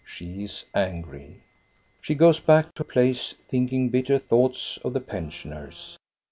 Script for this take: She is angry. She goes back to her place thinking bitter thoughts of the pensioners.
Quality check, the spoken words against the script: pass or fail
fail